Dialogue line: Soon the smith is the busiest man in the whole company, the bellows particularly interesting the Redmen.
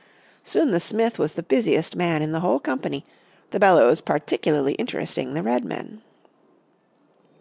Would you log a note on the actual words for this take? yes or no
yes